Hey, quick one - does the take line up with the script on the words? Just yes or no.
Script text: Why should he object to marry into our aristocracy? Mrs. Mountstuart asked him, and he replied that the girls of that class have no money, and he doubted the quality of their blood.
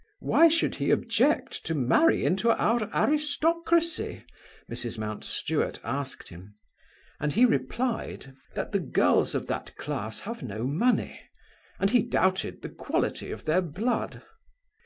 yes